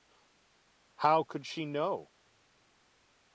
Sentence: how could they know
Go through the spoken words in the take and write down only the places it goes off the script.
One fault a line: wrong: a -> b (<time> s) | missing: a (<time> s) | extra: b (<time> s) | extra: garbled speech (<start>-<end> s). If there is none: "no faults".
wrong: they -> she (1.4 s)